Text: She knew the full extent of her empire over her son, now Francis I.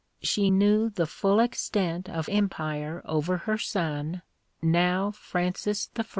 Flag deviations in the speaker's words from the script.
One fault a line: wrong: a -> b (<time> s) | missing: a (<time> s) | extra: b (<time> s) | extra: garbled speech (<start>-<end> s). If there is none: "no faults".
missing: her (2.3 s)